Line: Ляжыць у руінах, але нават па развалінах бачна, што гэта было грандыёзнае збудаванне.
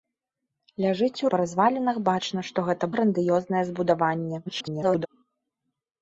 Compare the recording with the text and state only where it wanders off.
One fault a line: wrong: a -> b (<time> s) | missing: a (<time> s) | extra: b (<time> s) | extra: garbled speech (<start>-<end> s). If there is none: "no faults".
missing: руінах але нават (1.3 s)
missing: было (2.8 s)
extra: garbled speech (4.5-5.1 s)